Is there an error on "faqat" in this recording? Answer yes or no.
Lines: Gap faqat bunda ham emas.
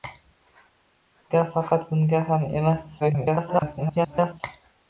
no